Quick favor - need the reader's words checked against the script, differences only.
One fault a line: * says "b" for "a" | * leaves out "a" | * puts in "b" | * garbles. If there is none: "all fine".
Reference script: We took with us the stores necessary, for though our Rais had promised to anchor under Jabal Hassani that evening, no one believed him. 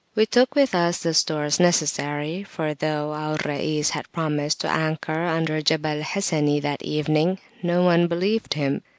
all fine